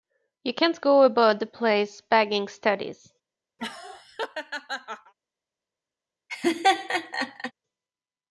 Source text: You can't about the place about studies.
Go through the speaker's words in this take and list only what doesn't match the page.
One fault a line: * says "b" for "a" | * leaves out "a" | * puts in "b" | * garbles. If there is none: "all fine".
* puts in "go"
* says "bagging" for "about"